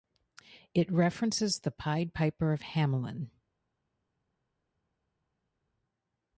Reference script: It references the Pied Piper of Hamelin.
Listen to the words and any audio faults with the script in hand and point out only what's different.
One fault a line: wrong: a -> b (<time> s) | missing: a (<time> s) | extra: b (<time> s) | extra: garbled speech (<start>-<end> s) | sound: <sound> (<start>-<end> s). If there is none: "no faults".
no faults